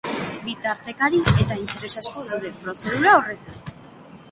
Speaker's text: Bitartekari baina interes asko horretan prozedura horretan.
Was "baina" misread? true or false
true